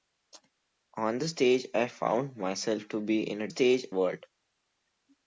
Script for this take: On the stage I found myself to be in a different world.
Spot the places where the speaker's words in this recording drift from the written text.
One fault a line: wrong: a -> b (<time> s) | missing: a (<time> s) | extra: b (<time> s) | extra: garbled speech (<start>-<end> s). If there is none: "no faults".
wrong: different -> stage (3.5 s)